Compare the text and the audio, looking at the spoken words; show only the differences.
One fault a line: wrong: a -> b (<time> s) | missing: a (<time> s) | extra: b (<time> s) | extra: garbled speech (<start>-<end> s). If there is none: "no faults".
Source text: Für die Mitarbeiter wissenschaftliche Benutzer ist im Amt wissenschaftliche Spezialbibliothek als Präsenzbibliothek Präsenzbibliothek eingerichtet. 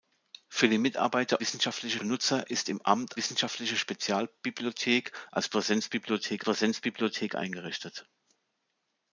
no faults